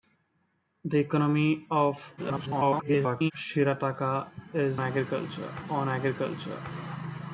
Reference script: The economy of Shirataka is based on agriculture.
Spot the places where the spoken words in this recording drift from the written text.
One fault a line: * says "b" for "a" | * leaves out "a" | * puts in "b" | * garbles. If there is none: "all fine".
* garbles
* says "agriculture" for "based"